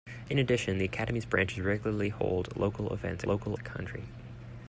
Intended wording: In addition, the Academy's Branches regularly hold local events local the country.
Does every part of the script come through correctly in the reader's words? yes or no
yes